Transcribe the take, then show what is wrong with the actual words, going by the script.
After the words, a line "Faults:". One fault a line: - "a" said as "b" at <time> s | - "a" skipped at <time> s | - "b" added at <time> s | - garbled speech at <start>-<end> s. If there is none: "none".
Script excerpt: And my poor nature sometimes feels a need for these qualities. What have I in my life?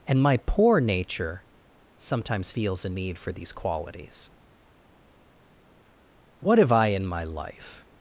And my poor nature sometimes feels a need for these qualities. What have I in my life?
Faults:
none